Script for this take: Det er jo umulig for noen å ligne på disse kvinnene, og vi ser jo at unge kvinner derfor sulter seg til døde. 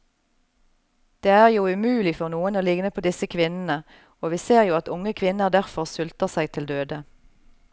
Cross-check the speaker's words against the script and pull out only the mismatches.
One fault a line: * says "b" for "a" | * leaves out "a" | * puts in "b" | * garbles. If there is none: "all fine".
all fine